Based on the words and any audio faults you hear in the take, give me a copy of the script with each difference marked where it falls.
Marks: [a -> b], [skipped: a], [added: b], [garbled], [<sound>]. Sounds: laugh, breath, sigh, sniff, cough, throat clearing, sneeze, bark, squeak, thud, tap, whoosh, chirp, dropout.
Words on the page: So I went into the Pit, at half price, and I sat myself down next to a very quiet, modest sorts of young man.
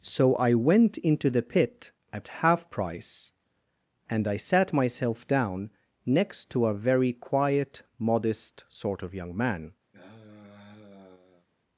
So I went into the Pit, at half price, and I sat myself down next to a very quiet, modest [sorts -> sort] of young man. [sigh]